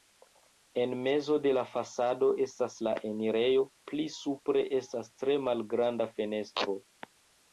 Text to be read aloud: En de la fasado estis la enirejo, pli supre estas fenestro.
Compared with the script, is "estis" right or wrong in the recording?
wrong